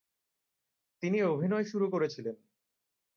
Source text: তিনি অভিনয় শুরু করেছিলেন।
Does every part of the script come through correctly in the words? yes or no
yes